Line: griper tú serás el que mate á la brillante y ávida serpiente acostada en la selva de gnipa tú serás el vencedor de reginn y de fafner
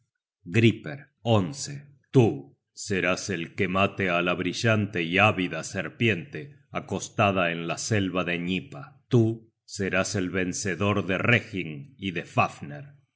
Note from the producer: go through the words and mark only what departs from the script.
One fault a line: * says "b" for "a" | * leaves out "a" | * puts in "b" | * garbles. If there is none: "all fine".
all fine